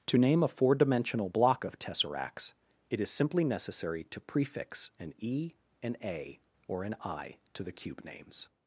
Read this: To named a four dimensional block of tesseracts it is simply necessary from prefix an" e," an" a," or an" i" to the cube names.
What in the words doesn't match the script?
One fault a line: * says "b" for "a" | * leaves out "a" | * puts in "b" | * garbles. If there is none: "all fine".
* says "name" for "named"
* says "to" for "from"